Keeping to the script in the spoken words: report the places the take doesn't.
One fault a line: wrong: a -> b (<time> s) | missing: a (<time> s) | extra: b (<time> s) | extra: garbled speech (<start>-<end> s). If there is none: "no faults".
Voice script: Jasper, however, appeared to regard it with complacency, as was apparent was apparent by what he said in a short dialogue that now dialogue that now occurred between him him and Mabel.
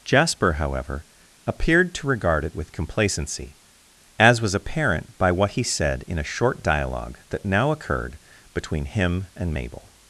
missing: was apparent (5.2 s)
missing: dialogue that now (7.7 s)
missing: him (9.3 s)